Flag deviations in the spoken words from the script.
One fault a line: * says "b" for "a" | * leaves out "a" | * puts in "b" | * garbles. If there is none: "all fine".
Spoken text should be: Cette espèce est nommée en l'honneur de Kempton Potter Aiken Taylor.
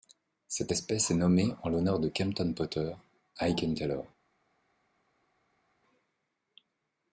all fine